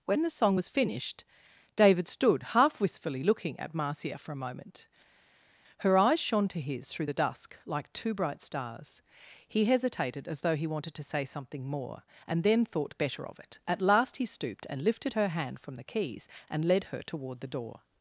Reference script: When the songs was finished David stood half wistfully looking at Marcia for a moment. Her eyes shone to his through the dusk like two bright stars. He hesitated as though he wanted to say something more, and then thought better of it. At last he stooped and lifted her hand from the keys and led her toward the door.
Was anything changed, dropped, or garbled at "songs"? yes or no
yes